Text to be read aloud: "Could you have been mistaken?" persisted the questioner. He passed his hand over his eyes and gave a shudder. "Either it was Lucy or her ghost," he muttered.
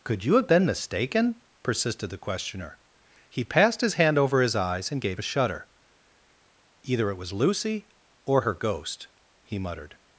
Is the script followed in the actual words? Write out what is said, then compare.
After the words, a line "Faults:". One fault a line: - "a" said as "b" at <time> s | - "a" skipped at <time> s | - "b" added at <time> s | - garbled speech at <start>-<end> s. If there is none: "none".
"Could you have been mistaken?" persisted the questioner. He passed his hand over his eyes and gave a shudder. "Either it was Lucy or her ghost," he muttered.
Faults:
none